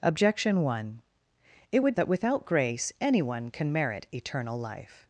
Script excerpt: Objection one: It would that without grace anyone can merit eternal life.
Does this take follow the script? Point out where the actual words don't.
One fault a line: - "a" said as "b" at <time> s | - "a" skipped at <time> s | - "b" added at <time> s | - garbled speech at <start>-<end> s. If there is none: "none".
none